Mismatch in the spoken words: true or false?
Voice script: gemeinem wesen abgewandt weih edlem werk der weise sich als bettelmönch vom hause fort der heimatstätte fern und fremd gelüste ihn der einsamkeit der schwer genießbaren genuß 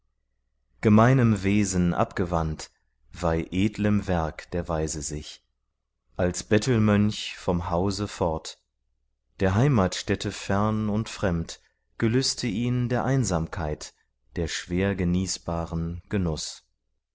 false